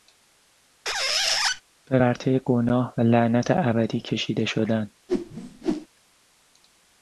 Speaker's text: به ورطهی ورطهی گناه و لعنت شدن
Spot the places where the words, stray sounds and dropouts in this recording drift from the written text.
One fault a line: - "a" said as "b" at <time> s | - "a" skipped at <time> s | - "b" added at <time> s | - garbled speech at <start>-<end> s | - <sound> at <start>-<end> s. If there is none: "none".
- squeak at 0.8-1.6 s
- "ورطهی" skipped at 2.4 s
- "ابدی کشیده" added at 3.5 s
- whoosh at 5.1-5.9 s